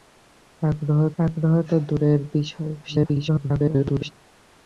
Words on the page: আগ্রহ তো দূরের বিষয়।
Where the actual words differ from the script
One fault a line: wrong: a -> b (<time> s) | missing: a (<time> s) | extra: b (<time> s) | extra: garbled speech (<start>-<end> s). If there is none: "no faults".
extra: আগ্রহ (1.2 s)
extra: garbled speech (2.8-4.1 s)